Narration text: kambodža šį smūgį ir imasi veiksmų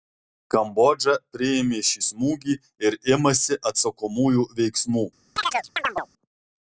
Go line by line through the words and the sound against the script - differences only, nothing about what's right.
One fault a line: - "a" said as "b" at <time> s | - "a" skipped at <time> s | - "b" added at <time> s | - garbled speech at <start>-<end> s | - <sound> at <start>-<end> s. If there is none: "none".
- "priėmė" added at 1.4 s
- "atsakomųjų" added at 3.7 s
- chirp at 5.4-6.1 s